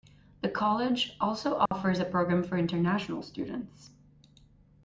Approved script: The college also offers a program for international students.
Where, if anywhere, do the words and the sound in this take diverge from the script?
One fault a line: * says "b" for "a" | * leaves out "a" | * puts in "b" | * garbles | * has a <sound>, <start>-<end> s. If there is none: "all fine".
* has a dropout, 1.7-1.7 s